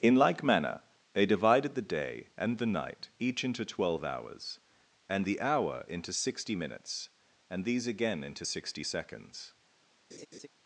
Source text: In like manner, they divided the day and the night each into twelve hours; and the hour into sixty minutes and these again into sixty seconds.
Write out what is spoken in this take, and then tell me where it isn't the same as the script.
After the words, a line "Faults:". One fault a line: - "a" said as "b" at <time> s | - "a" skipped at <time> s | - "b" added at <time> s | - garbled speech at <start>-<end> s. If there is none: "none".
In like manner, they divided the day and the night each into twelve hours; and the hour into sixty minutes and these again into sixty seconds.
Faults:
none